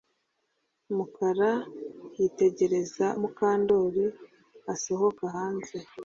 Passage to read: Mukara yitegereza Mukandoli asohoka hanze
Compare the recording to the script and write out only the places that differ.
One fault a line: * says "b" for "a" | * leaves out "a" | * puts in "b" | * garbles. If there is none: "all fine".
all fine